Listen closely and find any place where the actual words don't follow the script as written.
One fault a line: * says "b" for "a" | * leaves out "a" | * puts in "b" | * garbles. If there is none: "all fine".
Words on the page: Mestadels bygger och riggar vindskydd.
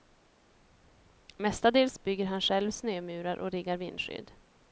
* puts in "han själv snömurar"